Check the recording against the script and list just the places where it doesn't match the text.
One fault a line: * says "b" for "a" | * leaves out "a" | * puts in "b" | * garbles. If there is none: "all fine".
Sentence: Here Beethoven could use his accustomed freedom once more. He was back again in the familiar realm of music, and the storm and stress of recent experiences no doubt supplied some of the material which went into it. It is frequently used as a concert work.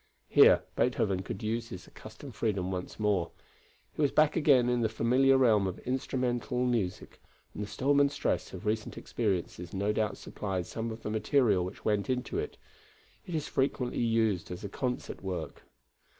* puts in "instrumental"